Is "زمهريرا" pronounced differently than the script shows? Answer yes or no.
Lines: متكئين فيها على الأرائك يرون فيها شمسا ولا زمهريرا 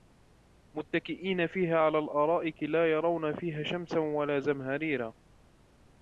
no